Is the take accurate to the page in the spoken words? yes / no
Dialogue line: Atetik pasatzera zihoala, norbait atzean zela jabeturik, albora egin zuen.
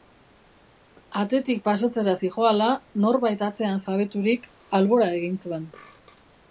no